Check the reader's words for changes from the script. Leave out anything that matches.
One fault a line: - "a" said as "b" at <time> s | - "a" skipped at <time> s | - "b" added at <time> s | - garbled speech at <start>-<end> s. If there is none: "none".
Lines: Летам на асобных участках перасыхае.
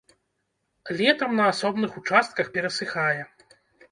none